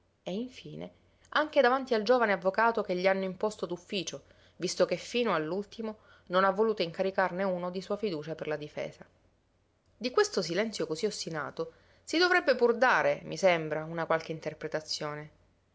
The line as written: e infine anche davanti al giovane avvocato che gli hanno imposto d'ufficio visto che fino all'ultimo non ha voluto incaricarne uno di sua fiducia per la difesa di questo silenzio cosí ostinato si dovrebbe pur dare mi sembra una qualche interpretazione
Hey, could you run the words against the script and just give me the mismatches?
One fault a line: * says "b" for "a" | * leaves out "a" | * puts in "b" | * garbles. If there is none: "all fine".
all fine